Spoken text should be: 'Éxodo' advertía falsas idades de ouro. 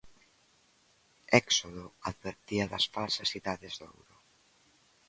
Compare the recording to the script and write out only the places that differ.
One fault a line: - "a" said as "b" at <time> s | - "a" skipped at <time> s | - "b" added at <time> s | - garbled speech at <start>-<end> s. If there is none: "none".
- "das" added at 2.7 s